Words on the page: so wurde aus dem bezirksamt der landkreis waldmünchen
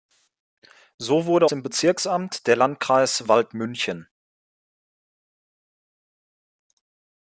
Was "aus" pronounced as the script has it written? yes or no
no